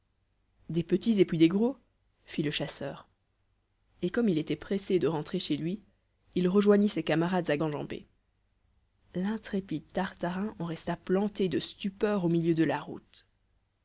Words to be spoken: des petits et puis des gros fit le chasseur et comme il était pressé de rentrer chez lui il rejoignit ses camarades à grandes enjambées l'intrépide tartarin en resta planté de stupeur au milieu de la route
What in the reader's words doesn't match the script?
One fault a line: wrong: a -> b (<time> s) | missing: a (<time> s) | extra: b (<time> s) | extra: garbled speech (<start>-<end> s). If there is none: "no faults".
missing: grandes (7.6 s)